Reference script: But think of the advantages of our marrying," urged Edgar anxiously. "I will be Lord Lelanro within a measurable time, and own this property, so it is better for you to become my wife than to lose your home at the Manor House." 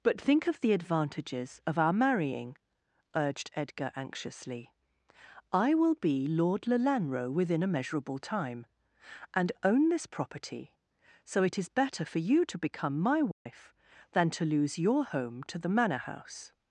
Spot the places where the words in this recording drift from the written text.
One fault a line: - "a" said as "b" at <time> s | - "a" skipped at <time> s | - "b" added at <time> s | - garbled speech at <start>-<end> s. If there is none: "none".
- "at" said as "to" at 15.4 s